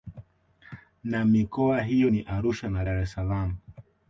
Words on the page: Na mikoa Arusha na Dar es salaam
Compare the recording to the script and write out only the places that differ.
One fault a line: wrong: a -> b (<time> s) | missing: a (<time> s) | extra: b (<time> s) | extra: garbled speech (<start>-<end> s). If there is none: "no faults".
extra: hiyo ni (1.8 s)